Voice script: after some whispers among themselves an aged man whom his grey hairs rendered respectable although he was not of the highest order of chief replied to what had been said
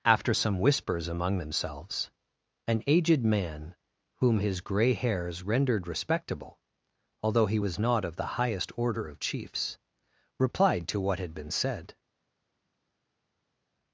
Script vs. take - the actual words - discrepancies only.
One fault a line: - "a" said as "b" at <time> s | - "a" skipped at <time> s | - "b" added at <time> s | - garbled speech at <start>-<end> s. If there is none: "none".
- "chief" said as "chiefs" at 9.2 s